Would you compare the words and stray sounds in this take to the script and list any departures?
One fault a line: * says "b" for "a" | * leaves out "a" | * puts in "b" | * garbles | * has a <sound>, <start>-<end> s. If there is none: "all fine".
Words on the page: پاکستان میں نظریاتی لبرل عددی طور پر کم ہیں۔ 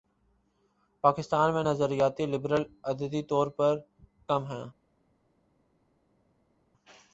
all fine